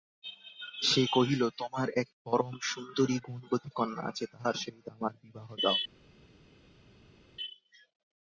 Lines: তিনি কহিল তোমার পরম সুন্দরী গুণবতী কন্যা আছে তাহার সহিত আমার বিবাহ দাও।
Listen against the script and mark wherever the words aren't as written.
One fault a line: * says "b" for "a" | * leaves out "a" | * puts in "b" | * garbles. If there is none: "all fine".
* says "সে" for "তিনি"
* puts in "এক"